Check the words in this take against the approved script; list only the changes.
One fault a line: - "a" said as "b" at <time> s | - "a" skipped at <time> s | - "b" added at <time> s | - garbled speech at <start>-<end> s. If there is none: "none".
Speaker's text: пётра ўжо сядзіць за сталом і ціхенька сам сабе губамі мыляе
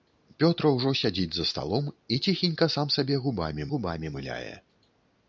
- "губамі" added at 3.7 s